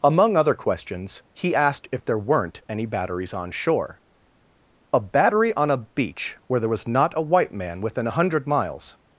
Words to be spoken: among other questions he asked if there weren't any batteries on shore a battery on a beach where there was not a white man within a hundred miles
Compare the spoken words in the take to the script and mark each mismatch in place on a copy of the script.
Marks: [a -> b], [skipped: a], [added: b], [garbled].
among other questions he asked if there weren't any batteries on shore a battery on a beach where there was not a white man within a hundred miles